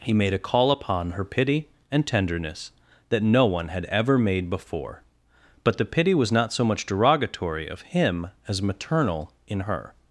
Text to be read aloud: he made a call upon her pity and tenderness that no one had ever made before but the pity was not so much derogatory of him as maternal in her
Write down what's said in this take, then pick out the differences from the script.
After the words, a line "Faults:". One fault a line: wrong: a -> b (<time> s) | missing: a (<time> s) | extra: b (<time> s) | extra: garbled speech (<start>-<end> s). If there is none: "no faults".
he made a call upon her pity and tenderness that no one had ever made before but the pity was not so much derogatory of him as maternal in her
Faults:
no faults